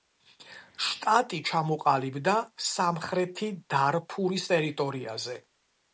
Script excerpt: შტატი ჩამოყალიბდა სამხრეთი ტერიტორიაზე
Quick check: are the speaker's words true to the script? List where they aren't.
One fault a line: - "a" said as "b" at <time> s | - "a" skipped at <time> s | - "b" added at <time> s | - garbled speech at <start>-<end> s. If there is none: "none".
- "დარფურის" added at 3.8 s